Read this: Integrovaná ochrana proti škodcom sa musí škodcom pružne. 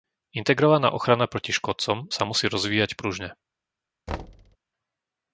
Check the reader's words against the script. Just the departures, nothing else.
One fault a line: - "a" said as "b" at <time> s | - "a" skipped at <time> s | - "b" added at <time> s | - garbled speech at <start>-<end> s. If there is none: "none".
- "škodcom" said as "rozvíjať" at 2.5 s